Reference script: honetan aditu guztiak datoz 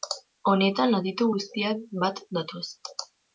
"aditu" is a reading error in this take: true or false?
false